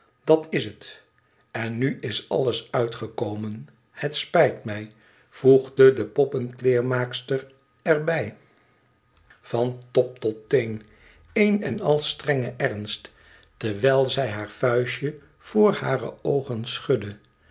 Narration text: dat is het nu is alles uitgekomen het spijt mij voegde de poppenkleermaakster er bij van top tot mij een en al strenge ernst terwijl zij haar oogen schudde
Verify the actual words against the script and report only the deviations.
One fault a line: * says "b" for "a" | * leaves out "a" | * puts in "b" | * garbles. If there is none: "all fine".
* puts in "en"
* says "teen" for "mij"
* puts in "vuistje voor hare"